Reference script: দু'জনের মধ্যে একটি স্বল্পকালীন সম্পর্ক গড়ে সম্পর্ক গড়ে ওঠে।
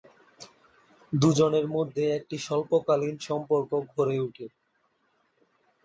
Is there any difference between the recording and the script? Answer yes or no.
yes